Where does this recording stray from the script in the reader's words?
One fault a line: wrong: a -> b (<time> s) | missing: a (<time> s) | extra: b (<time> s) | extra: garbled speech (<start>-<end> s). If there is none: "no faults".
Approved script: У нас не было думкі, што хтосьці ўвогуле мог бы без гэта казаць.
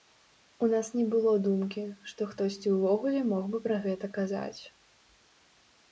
wrong: без -> пра (3.7 s)